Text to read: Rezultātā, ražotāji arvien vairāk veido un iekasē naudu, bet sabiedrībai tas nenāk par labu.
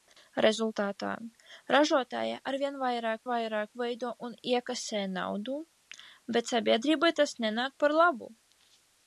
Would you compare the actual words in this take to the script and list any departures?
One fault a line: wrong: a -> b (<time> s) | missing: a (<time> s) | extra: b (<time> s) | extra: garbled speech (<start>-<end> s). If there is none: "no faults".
extra: vairāk (3.3 s)